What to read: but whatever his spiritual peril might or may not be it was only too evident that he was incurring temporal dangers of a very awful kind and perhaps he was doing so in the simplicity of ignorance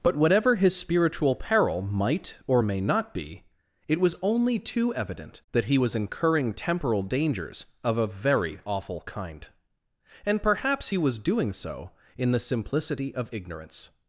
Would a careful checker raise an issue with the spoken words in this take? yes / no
no